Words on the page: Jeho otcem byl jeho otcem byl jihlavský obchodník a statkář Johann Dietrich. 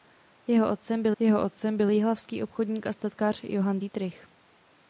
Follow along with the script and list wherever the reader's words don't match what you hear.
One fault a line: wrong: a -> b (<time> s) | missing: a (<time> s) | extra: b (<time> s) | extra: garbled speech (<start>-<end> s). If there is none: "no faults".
no faults